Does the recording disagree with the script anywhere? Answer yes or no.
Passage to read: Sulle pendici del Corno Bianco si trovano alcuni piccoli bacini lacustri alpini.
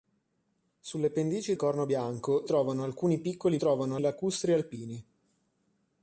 yes